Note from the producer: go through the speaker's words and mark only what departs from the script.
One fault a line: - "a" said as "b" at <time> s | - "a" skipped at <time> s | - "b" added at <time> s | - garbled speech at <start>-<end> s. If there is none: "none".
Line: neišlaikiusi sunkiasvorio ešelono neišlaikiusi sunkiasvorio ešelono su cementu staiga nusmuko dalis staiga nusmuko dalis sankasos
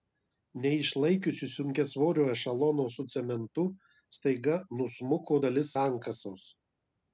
- "neišlaikiusi sunkiasvorio ešelono" skipped at 2.9 s
- "staiga nusmuko dalis" skipped at 5.7 s